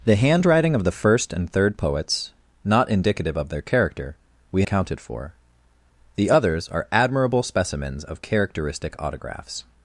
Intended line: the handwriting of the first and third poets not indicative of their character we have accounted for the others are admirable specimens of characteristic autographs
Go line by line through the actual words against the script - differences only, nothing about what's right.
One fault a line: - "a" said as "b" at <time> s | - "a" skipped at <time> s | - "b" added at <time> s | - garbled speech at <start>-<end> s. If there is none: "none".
- "have" skipped at 4.6 s